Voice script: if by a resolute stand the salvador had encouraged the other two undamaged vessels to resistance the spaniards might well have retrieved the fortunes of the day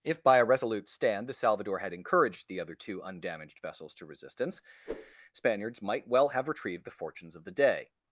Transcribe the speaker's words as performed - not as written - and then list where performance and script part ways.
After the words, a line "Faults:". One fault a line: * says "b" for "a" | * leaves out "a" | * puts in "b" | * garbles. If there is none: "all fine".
if by a resolute stand the salvador had encouraged the other two undamaged vessels to resistance spaniards might well have retrieved the fortunes of the day
Faults:
* leaves out "the"